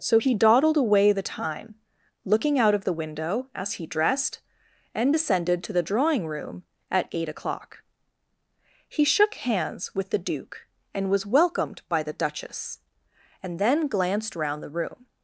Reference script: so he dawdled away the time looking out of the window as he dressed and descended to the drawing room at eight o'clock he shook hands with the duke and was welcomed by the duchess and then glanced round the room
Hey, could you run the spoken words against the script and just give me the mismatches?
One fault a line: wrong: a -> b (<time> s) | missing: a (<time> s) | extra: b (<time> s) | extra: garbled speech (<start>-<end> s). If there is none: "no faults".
no faults